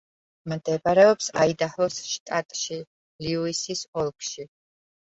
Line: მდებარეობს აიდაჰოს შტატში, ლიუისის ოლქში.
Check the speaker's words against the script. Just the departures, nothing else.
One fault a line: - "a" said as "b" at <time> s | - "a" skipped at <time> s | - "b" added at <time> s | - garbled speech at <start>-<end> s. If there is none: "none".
none